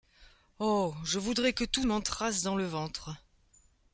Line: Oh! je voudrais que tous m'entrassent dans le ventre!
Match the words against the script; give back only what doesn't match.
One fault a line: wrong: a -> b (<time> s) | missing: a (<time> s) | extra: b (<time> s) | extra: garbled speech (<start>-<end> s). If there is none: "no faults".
no faults